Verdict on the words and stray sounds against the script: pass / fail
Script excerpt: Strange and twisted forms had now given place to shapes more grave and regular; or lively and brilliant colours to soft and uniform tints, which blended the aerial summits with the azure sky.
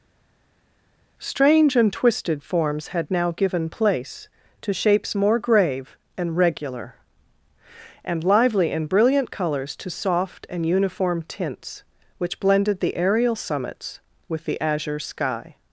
fail